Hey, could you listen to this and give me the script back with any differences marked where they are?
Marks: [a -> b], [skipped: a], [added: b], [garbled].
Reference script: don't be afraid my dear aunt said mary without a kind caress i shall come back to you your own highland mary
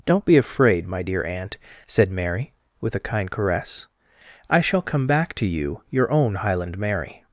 don't be afraid my dear aunt said mary [without -> with] a kind caress i shall come back to you your own highland mary